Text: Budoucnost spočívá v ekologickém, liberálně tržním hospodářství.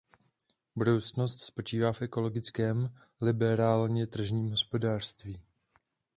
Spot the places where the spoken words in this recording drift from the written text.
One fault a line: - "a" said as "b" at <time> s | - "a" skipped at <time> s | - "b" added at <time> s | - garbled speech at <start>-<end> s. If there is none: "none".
none